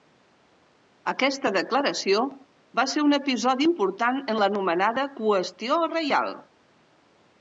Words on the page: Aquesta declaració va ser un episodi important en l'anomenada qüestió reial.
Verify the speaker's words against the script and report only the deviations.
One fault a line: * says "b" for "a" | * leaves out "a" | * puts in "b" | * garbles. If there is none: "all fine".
all fine